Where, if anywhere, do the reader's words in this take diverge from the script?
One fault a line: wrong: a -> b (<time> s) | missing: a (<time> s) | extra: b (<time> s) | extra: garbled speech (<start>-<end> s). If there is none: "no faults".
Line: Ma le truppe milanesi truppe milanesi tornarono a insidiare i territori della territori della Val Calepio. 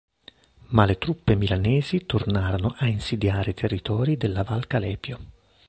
missing: truppe milanesi (2.1 s)
missing: territori della (4.4 s)